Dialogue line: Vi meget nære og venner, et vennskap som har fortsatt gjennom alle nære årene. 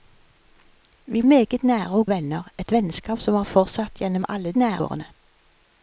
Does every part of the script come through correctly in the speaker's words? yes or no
yes